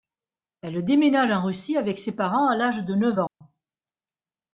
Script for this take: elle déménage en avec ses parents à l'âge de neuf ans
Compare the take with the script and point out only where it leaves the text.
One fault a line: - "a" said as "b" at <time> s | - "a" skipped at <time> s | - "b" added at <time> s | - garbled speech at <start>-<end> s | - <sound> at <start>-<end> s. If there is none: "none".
- "russie" added at 1.4 s
- dropout at 3.3-3.4 s